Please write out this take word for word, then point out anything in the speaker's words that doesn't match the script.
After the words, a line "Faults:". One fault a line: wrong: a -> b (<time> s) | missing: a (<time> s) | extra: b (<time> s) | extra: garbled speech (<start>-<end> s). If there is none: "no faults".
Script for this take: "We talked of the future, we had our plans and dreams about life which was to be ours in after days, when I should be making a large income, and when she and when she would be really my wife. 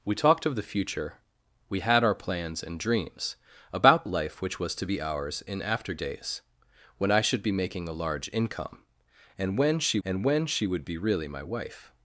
"We talked of the future, we had our plans and dreams about life which was to be ours in after days, when I should be making a large income, and when she and when she would be really my wife.
Faults:
no faults